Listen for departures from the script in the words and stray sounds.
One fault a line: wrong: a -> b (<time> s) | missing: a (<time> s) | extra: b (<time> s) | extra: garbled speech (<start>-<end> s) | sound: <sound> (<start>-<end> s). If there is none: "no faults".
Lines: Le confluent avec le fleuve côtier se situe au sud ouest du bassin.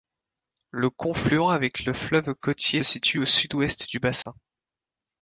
missing: se (2.8 s)
sound: dropout (4.2-4.3 s)